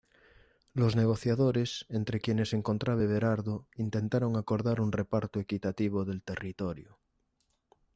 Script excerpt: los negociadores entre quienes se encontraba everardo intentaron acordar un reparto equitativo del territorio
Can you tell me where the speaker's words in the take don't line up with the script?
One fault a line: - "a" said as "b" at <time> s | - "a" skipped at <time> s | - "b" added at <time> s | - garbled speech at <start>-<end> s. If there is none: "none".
none